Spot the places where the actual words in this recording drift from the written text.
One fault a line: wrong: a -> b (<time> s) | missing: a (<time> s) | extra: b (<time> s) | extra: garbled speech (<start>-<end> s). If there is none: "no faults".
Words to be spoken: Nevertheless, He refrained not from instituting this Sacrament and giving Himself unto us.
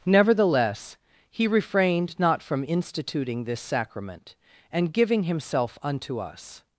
no faults